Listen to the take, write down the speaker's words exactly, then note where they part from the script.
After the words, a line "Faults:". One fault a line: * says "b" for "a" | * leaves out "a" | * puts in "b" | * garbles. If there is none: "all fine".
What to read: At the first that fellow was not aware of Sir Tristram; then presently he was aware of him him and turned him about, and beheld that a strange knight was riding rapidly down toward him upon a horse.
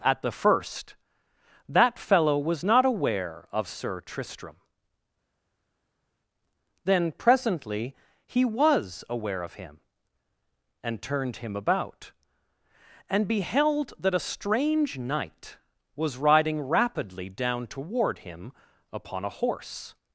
At the first that fellow was not aware of Sir Tristram; then presently he was aware of him and turned him about, and beheld that a strange knight was riding rapidly down toward him upon a horse.
Faults:
* leaves out "him"